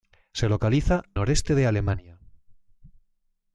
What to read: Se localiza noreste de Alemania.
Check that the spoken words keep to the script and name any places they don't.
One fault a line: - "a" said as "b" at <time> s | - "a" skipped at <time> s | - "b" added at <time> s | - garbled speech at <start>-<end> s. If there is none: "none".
none